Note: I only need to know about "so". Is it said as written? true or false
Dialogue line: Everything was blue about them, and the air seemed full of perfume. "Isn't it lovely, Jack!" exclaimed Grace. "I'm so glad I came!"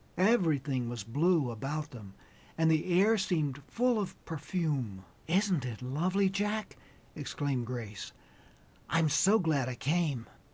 true